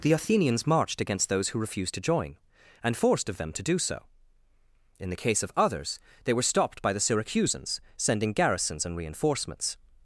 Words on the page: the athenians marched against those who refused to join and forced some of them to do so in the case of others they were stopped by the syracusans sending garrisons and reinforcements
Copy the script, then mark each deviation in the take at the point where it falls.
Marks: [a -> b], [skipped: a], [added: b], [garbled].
the athenians marched against those who refused to join and forced [skipped: some] of them to do so in the case of others they were stopped by the syracusans sending garrisons and reinforcements